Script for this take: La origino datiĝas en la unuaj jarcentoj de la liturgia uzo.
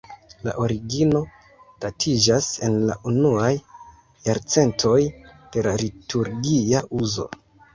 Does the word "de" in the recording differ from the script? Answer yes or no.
no